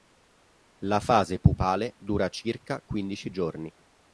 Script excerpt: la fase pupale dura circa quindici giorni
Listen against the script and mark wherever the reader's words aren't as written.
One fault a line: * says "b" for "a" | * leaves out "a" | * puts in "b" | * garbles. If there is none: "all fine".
all fine